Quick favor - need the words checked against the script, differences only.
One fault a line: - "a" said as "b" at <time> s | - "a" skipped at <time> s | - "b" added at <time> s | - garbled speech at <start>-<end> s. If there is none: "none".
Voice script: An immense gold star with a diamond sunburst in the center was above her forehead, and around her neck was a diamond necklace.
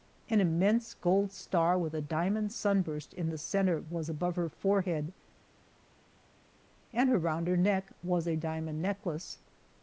none